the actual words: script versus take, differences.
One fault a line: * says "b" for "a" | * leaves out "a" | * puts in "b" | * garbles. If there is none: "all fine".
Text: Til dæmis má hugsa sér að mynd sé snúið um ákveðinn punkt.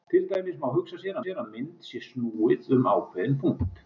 * puts in "sér"